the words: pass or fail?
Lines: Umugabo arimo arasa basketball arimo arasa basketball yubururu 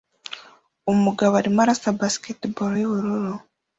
fail